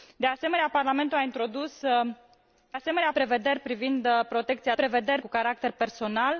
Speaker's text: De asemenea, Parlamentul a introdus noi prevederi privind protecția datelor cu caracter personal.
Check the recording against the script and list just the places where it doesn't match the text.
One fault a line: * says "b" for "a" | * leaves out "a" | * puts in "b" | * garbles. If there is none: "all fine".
* says "asemenea" for "noi"
* says "prevederi" for "datelor"